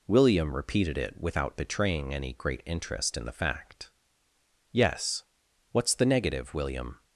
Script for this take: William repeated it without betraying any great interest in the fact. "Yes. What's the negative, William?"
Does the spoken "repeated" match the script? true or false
true